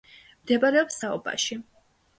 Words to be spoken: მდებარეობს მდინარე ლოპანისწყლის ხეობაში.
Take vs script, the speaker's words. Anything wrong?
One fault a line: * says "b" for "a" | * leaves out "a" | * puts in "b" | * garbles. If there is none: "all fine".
* leaves out "მდინარე ლოპანისწყლის"